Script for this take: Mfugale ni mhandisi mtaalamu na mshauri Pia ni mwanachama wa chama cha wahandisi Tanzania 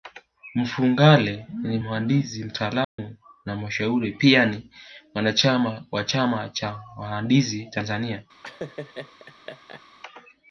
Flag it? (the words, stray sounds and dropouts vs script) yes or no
yes